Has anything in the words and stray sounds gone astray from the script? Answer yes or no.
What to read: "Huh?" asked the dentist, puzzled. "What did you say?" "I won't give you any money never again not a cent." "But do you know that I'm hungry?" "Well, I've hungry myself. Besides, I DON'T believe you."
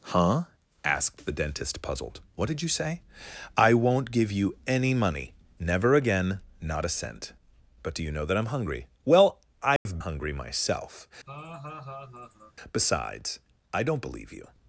yes